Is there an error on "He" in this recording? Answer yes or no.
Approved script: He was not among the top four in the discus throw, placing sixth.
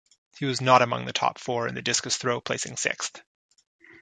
no